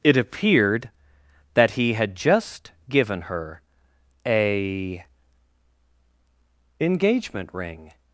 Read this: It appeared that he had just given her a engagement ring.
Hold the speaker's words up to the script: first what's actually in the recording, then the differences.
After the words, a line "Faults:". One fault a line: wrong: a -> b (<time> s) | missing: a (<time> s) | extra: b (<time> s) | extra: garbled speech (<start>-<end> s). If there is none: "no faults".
It appeared that he had just given her a engagement ring.
Faults:
no faults